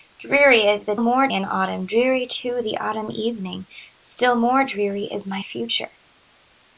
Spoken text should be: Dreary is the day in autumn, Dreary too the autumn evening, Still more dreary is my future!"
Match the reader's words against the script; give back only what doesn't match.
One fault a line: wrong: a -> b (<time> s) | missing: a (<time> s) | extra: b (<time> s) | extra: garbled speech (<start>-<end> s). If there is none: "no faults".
wrong: day -> more (1.0 s)